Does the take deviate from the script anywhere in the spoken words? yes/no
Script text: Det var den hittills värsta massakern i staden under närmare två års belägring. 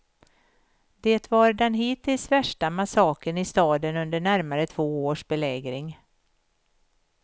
no